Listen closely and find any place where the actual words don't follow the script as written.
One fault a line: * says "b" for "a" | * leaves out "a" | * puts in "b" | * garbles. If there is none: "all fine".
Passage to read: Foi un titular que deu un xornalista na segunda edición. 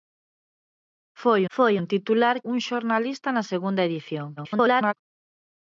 * puts in "foi"
* leaves out "que deu"
* garbles